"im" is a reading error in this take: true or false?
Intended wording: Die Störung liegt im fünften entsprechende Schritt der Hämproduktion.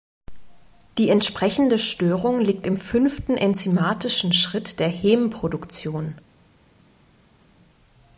false